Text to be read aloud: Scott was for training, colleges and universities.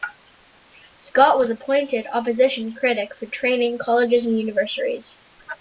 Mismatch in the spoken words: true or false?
true